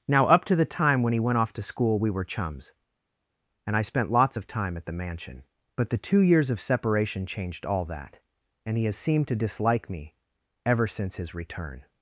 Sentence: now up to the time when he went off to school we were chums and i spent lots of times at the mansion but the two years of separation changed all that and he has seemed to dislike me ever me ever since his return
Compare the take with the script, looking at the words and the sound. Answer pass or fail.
fail